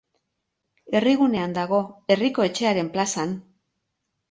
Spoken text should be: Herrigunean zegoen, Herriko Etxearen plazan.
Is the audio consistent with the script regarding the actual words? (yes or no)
no